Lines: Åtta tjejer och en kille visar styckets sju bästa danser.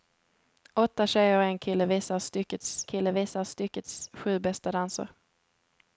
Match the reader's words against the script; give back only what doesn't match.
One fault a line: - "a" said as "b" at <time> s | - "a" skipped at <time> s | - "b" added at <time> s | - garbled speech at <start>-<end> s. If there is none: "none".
- "kille visar styckets" added at 2.9 s